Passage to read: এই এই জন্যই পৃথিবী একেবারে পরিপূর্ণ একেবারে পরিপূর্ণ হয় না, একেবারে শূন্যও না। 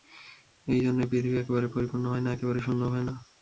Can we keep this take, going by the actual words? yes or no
no